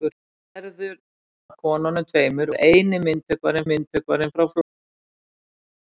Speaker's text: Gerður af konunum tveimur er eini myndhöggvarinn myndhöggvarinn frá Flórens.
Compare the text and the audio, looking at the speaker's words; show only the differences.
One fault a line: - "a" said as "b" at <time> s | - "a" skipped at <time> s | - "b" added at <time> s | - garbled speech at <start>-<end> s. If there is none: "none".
none